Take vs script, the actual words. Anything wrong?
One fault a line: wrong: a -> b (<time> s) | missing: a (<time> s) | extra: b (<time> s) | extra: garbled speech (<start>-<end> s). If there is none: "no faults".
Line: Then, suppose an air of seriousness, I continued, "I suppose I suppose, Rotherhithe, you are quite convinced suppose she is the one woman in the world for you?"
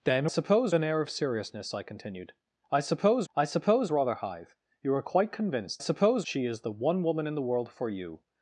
no faults